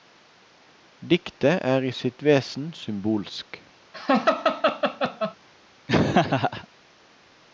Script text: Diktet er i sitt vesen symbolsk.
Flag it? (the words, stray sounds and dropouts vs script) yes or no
yes